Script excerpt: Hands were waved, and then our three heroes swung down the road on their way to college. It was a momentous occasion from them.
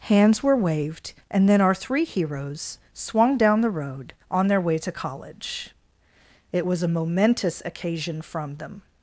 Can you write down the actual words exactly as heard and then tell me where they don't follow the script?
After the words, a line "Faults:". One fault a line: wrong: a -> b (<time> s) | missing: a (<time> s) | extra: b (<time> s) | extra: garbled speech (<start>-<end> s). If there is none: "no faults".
Hands were waved, and then our three heroes swung down the road on their way to college. It was a momentous occasion from them.
Faults:
no faults